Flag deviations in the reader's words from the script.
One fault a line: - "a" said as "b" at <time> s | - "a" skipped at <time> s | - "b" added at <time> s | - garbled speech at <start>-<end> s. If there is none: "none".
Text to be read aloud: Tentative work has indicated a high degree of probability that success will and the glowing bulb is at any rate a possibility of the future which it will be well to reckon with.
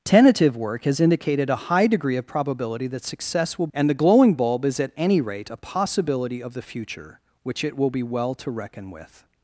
none